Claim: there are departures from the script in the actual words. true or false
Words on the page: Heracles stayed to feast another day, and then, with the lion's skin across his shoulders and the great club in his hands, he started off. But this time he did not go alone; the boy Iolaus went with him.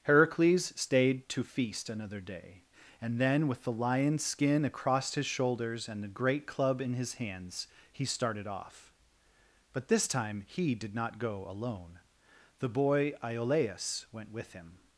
false